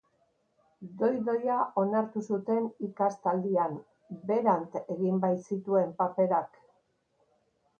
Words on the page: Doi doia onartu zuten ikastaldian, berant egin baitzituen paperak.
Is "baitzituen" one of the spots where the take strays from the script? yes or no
no